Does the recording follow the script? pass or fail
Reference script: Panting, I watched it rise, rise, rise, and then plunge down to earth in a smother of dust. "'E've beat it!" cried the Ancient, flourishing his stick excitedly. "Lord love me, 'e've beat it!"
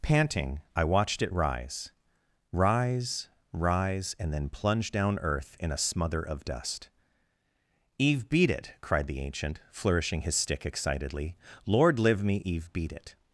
fail